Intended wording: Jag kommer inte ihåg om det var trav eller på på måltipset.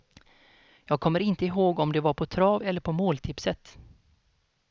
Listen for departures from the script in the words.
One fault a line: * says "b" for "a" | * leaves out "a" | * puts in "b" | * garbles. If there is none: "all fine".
* puts in "på"
* leaves out "på"